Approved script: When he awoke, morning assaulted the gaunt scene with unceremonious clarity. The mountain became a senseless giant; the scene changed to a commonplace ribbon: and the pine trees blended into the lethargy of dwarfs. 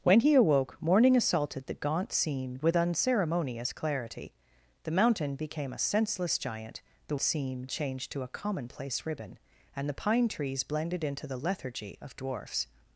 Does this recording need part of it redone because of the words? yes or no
no